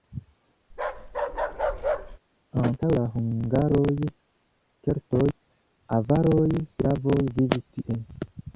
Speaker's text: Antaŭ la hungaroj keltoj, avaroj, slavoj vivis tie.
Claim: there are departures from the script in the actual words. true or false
false